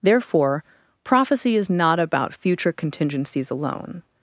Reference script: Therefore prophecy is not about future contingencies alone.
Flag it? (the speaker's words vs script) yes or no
no